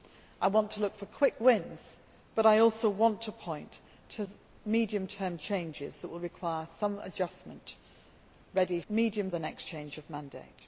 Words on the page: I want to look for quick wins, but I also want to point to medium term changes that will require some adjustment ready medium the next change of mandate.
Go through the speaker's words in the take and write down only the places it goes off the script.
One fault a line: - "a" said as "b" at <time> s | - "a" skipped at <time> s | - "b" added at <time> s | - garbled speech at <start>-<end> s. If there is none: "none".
none